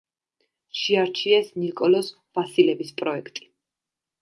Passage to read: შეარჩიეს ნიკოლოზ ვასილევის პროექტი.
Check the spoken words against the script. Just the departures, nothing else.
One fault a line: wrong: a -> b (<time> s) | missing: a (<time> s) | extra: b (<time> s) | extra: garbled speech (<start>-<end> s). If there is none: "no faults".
no faults